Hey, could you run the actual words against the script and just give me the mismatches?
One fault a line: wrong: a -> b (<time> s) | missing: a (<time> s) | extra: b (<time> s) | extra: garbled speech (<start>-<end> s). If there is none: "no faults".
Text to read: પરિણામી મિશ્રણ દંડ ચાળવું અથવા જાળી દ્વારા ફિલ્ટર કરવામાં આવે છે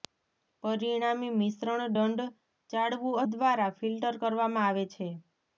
missing: અથવા જાળી (3.2 s)